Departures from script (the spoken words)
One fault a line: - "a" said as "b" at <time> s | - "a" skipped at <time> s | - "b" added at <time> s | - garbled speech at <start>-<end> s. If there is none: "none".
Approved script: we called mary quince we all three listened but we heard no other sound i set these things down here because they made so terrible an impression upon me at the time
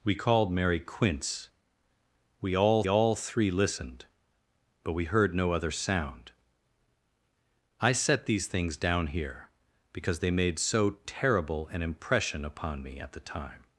- "all" added at 2.9 s